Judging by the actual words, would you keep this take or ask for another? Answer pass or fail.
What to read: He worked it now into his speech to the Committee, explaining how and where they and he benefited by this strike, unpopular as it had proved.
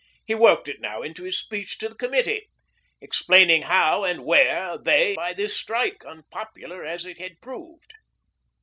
fail